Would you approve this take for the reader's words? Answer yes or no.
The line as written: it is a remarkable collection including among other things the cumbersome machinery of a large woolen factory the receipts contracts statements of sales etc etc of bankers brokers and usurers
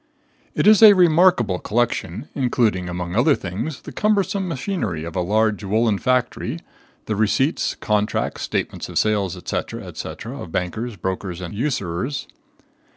yes